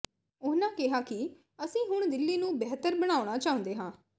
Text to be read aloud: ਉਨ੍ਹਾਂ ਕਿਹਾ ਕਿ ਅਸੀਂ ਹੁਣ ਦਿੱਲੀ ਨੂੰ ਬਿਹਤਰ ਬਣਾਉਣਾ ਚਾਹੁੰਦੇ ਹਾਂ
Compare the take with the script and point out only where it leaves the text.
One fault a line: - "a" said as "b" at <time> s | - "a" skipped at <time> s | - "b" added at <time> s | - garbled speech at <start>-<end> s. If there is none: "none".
none